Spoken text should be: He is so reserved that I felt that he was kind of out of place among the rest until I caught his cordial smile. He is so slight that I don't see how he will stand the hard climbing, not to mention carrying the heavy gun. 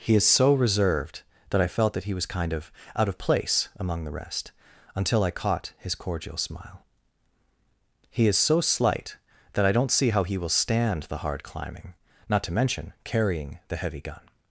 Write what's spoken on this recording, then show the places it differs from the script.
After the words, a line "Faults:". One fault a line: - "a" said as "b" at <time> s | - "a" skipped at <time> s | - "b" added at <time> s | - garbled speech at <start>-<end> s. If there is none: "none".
He is so reserved that I felt that he was kind of out of place among the rest until I caught his cordial smile. He is so slight that I don't see how he will stand the hard climbing, not to mention carrying the heavy gun.
Faults:
none